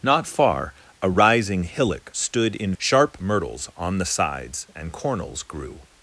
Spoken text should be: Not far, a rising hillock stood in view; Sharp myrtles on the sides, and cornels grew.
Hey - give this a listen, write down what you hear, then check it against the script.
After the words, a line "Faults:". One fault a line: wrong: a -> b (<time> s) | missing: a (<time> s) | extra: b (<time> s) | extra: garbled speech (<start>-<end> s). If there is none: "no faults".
Not far, a rising hillock stood in; Sharp myrtles on the sides, and cornels grew.
Faults:
missing: view (2.7 s)